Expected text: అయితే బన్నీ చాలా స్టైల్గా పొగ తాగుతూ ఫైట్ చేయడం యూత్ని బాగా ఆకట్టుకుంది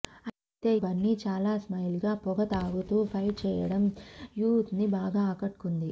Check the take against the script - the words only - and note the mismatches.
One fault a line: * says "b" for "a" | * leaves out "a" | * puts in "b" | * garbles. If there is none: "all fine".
all fine